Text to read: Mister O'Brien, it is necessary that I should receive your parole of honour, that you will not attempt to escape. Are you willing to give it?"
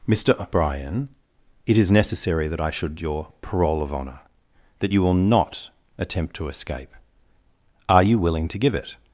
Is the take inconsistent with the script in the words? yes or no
yes